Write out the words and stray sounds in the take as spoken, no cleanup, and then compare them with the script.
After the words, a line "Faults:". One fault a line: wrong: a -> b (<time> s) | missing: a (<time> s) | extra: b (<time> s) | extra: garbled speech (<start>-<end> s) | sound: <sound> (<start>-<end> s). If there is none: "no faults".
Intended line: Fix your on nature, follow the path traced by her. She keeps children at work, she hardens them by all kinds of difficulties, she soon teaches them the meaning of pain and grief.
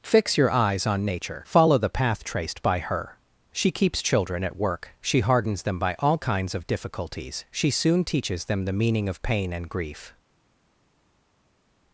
Fix your eyes on nature, follow the path traced by her. She keeps children at work, she hardens them by all kinds of difficulties, she soon teaches them the meaning of pain and grief.
Faults:
extra: eyes (0.5 s)